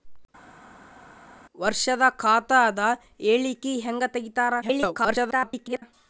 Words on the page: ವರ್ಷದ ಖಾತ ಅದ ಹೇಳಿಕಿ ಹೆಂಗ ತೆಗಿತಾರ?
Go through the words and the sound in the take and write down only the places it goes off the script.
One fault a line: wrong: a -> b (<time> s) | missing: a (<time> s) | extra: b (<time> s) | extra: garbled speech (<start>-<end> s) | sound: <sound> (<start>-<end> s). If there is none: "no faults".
extra: garbled speech (4.6-5.8 s)